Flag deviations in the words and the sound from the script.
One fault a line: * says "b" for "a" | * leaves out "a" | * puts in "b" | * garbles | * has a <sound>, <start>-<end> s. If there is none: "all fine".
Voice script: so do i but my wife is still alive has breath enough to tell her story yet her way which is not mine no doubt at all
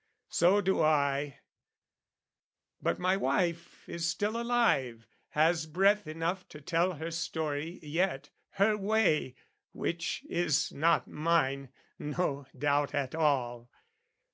all fine